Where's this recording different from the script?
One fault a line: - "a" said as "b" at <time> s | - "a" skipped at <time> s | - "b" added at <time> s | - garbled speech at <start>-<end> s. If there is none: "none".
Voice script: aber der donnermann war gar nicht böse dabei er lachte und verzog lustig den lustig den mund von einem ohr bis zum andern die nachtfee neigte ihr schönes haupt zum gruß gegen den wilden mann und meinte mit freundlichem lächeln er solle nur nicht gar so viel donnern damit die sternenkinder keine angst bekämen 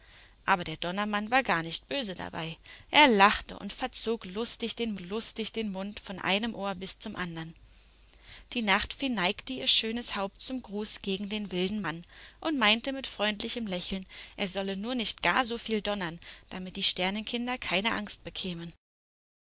none